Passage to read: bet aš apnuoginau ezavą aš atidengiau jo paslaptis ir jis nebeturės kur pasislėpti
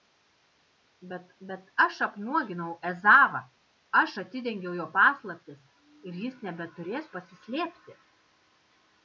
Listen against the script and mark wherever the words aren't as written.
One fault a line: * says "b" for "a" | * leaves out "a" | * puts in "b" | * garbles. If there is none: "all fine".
* puts in "bet"
* leaves out "kur"